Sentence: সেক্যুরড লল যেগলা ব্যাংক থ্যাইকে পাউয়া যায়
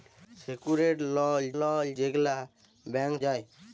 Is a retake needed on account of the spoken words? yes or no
yes